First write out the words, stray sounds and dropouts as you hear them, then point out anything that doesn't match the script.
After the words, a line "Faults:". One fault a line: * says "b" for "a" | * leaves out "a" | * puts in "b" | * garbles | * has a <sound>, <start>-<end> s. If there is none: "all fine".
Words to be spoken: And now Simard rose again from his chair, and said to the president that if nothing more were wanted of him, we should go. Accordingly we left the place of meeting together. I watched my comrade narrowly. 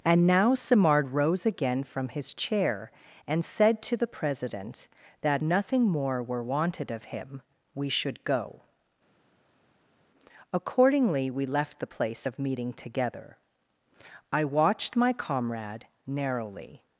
And now Simard rose again from his chair, and said to the president that nothing more were wanted of him, we should go. Accordingly we left the place of meeting together. I watched my comrade narrowly.
Faults:
* leaves out "if"